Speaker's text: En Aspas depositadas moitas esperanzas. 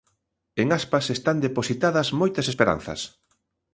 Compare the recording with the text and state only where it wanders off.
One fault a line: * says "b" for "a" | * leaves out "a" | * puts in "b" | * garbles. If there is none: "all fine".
* puts in "están"